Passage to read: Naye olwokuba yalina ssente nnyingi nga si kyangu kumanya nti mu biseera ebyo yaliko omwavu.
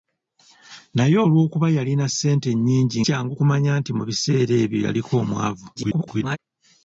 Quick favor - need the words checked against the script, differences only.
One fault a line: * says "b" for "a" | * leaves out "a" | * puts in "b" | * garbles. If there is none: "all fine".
* leaves out "nga si"
* garbles